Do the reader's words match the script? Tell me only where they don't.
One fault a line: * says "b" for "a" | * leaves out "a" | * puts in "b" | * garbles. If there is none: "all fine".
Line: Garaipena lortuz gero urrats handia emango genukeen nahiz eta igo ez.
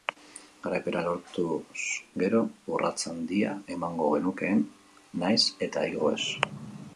all fine